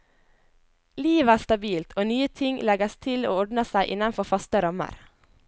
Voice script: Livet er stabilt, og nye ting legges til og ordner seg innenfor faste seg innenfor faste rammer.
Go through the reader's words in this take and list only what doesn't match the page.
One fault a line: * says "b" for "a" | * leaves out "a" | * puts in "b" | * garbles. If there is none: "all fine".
* leaves out "seg innenfor faste"